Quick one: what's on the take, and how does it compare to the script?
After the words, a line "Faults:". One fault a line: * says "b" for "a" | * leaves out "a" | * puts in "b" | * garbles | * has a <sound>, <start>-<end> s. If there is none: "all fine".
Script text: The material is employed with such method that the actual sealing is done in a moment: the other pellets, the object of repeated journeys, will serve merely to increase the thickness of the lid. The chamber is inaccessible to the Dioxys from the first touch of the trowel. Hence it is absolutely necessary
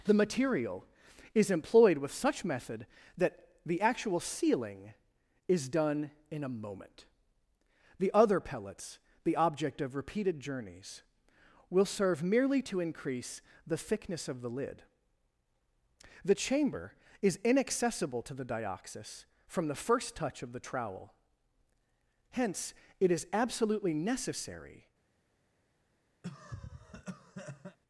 The material is employed with such method that the actual sealing is done in a moment: the other pellets, the object of repeated journeys, will serve merely to increase the thickness of the lid. The chamber is inaccessible to the Dioxys from the first touch of the trowel. Hence it is absolutely necessary
Faults:
* has a cough, 26.2-27.8 s